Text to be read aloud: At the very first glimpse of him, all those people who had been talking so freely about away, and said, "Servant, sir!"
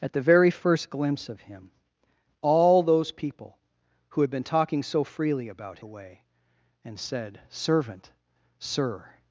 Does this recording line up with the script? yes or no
yes